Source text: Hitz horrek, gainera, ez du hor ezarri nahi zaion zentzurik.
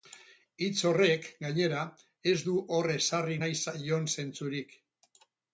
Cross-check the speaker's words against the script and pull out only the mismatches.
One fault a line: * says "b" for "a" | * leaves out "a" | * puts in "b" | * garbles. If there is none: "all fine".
all fine